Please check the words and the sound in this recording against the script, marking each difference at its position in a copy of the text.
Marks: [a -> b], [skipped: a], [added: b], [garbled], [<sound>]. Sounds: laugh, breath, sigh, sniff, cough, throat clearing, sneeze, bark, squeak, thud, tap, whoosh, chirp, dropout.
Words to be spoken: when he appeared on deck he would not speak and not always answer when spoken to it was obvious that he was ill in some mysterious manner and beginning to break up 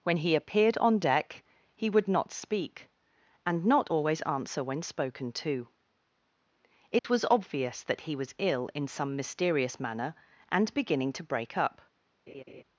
when he appeared on deck he would not speak and not always answer when spoken to it [dropout] was obvious that he was ill in some mysterious manner and beginning to break up [laugh]